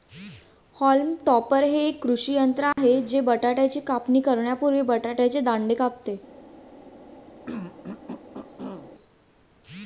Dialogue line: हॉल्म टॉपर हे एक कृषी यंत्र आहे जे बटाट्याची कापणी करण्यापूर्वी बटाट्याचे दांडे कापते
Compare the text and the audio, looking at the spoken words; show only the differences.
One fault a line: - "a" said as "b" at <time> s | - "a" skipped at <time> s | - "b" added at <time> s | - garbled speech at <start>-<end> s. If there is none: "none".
none